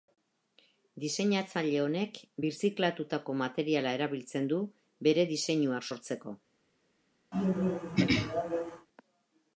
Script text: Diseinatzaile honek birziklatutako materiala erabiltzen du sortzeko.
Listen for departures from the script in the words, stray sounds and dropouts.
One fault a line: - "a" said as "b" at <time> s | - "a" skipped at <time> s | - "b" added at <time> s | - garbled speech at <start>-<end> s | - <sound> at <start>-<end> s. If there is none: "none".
- "bere diseinuak" added at 5.1 s
- throat clearing at 7.3-8.9 s